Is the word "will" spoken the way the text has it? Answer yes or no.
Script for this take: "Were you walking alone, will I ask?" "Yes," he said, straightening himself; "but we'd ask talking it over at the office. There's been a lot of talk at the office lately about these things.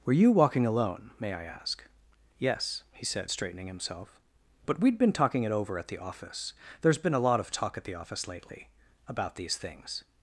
no